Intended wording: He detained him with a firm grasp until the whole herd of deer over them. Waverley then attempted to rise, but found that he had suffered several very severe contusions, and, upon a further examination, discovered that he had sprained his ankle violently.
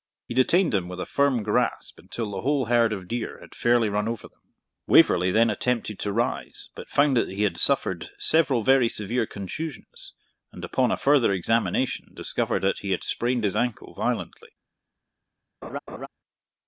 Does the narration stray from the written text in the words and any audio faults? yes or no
yes